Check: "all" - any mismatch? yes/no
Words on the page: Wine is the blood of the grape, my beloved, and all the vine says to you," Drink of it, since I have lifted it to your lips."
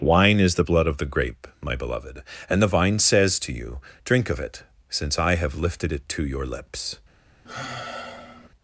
yes